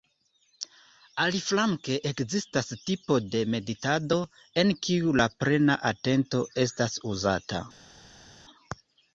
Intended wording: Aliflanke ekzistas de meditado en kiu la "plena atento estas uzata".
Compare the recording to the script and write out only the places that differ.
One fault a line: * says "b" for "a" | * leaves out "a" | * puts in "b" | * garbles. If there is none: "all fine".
* puts in "tipo"